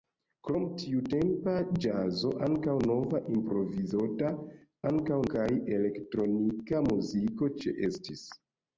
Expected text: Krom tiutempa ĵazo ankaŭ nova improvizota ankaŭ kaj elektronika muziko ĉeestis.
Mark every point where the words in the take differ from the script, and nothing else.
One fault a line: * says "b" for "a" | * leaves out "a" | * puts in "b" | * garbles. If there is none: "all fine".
all fine